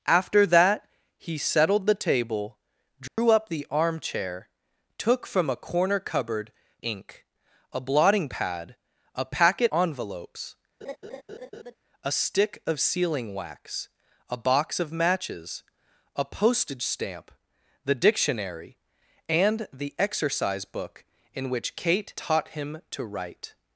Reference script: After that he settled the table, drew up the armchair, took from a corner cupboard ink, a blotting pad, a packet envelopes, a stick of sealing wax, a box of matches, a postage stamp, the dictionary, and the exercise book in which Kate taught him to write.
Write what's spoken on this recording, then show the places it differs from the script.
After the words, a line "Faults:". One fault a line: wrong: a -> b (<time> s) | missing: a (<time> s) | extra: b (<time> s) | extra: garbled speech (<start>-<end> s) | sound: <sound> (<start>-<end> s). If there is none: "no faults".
After that he settled the table, drew up the armchair, took from a corner cupboard ink, a blotting pad, a packet envelopes, a stick of sealing wax, a box of matches, a postage stamp, the dictionary, and the exercise book in which Kate taught him to write.
Faults:
sound: dropout (3.1-3.2 s)
sound: laugh (10.8-11.8 s)